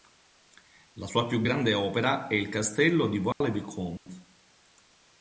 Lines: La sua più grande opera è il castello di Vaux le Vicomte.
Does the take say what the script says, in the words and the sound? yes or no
no